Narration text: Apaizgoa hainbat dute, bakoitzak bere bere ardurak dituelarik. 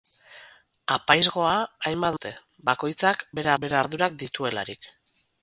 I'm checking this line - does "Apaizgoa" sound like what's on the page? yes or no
yes